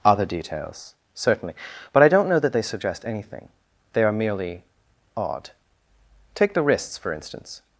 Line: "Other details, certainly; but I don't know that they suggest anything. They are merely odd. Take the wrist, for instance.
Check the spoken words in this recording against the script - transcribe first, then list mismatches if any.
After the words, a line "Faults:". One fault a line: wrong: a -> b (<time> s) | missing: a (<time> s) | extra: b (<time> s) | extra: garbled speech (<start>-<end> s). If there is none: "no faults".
"Other details, certainly; but I don't know that they suggest anything. They are merely odd. Take the wrists, for instance.
Faults:
wrong: wrist -> wrists (6.6 s)